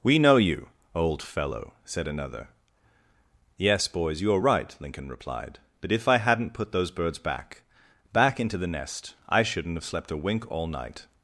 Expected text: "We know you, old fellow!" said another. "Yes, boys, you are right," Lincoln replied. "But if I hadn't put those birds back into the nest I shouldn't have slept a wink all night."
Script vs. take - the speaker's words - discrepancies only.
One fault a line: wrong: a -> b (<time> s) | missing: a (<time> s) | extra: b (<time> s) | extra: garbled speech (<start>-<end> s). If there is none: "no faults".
extra: back (8.1 s)